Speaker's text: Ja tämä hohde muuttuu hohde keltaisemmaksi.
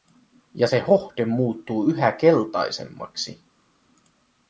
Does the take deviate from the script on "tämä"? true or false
true